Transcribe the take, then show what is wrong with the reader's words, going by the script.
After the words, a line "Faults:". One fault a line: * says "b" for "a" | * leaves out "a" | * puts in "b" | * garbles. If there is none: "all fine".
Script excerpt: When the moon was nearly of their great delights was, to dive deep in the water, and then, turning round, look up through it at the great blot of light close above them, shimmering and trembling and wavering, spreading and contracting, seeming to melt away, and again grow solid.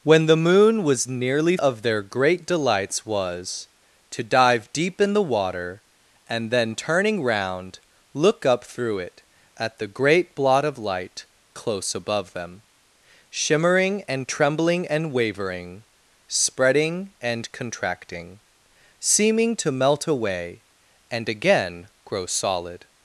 When the moon was nearly of their great delights was, to dive deep in the water, and then, turning round, look up through it at the great blot of light close above them, shimmering and trembling and wavering, spreading and contracting, seeming to melt away, and again grow solid.
Faults:
all fine